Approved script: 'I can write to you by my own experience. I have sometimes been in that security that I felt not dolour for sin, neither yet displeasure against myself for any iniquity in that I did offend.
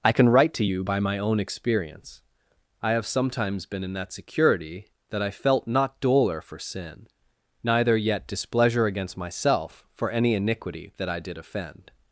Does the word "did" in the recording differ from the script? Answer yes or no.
no